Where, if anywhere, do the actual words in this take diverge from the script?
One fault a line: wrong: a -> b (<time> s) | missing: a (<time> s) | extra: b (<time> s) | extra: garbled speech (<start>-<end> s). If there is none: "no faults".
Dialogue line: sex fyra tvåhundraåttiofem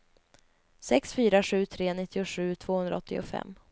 extra: sju tre nittiosju (1.4 s)